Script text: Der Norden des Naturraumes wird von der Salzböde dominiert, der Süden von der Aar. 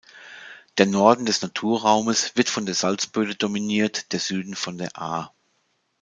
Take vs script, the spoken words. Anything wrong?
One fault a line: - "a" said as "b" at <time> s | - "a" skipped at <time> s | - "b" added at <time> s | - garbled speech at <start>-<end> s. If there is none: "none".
none